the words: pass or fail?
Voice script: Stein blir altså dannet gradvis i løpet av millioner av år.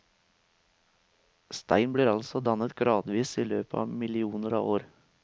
pass